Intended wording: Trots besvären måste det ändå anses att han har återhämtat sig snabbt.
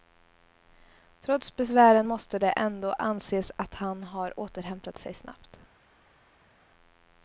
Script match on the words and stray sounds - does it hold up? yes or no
yes